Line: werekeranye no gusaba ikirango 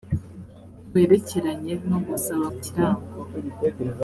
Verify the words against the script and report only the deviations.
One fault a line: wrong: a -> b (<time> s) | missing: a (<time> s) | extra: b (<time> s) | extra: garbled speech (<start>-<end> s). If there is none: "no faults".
no faults